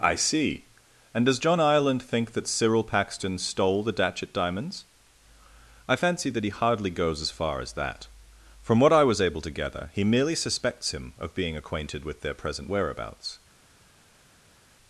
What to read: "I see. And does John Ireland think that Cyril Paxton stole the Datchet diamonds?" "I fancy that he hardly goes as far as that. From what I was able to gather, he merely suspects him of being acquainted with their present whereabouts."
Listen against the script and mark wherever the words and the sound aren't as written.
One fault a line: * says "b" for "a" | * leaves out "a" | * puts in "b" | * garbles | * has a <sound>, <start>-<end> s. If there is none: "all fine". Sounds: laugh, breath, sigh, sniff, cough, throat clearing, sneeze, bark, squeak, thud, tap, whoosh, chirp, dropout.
all fine